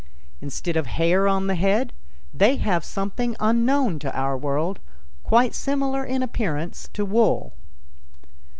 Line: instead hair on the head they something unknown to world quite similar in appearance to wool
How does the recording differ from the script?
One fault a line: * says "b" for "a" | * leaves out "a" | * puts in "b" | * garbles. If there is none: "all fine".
* puts in "of"
* puts in "have"
* puts in "our"